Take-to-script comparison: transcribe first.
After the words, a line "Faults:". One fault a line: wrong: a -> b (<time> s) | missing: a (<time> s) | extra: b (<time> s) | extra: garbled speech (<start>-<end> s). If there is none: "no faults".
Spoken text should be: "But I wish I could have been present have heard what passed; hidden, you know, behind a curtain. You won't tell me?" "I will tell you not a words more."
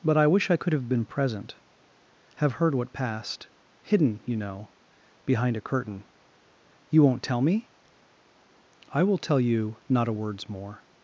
"But I wish I could have been present have heard what passed; hidden, you know, behind a curtain. You won't tell me?" "I will tell you not a words more."
Faults:
no faults